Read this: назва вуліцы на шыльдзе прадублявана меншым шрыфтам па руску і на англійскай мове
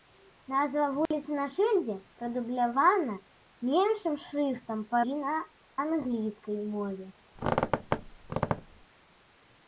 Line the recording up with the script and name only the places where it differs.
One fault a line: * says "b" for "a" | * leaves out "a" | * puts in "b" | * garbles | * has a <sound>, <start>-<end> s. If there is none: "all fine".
* has a dropout, 1.1-1.1 s
* leaves out "руску"
* has a squeak, 7.4-8.9 s